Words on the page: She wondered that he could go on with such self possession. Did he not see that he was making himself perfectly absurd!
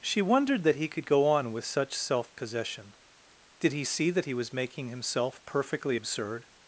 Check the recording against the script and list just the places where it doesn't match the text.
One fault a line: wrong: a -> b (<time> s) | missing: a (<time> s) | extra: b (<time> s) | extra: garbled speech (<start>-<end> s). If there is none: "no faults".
missing: not (3.8 s)